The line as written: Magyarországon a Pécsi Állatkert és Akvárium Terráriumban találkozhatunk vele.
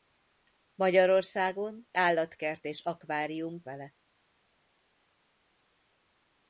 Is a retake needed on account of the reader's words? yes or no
yes